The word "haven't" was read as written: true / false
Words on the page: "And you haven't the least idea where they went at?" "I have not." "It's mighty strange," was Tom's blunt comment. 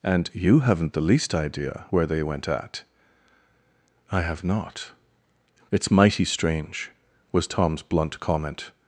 true